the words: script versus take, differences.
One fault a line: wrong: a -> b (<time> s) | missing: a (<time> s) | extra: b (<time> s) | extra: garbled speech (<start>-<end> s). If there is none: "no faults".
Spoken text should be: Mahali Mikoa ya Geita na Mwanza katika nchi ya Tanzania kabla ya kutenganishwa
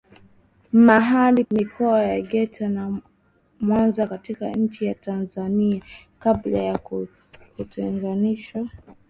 no faults